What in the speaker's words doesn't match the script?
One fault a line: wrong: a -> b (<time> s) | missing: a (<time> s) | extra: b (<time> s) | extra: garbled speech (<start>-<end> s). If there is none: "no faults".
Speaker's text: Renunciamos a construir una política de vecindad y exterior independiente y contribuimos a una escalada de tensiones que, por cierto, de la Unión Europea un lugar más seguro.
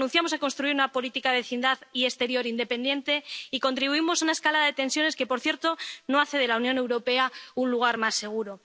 extra: no hace (6.1 s)